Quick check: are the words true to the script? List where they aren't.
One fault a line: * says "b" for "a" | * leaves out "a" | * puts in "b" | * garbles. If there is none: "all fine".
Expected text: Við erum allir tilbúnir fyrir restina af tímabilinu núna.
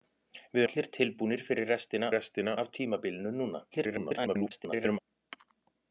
* leaves out "erum"
* puts in "restina"
* garbles